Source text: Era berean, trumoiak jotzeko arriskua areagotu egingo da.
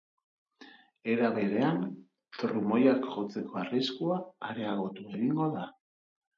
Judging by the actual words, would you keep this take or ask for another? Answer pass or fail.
pass